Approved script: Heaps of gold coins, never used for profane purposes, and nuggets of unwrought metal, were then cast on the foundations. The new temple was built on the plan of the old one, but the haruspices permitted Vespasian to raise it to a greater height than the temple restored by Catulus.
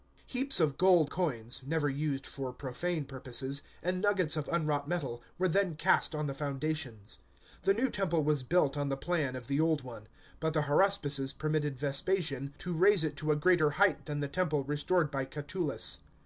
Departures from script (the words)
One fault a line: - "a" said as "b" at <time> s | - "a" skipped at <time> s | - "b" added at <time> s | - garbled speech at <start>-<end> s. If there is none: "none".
none